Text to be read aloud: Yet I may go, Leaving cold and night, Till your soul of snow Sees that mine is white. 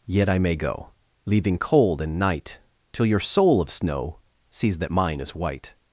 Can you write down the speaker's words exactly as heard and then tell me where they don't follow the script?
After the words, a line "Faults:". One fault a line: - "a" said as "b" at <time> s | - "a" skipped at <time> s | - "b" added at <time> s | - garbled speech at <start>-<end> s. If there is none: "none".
Yet I may go, Leaving cold and night, Till your soul of snow Sees that mine is white.
Faults:
none